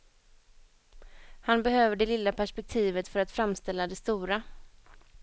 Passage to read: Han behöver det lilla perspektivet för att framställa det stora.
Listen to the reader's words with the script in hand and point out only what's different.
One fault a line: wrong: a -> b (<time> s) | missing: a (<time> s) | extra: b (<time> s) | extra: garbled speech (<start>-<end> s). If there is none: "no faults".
no faults